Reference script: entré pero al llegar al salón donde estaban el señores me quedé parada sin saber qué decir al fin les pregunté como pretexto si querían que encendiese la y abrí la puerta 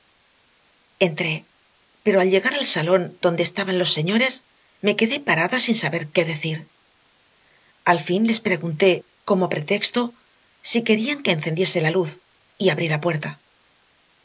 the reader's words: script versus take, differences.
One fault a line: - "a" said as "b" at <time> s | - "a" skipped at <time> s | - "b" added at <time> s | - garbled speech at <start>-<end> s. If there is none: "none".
- "el" said as "los" at 3.8 s
- "luz" added at 12.0 s